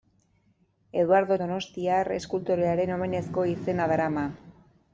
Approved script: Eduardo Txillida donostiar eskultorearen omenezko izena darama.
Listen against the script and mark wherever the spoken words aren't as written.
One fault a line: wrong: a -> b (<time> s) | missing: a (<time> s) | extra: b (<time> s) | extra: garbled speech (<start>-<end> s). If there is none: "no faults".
missing: Txillida (1.4 s)